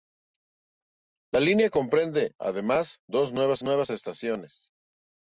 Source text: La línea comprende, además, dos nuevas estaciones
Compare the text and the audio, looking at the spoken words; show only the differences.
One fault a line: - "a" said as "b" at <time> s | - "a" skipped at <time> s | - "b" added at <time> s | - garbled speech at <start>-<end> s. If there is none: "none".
- "nuevas" added at 3.6 s